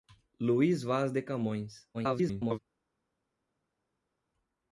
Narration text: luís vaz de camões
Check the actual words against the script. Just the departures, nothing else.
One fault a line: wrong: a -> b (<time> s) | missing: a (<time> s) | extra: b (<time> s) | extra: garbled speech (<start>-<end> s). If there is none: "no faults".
extra: garbled speech (1.9-2.6 s)